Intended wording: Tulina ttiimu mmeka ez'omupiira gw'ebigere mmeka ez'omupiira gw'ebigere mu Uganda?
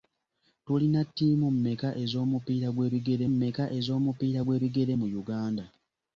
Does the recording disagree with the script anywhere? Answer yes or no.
no